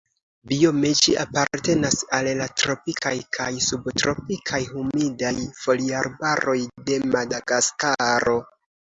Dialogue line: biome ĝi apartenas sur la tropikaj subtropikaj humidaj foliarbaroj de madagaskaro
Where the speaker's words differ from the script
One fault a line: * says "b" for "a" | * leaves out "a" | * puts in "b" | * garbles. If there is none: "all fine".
* says "al" for "sur"
* puts in "kaj"